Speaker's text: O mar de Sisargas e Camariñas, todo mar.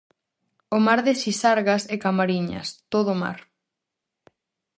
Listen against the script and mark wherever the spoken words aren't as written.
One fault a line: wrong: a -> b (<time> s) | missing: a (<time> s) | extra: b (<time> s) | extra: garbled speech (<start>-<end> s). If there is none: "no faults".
no faults